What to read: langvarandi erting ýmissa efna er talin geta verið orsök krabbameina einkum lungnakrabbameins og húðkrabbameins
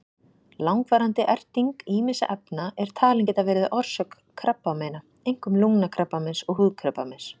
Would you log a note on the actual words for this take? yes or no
no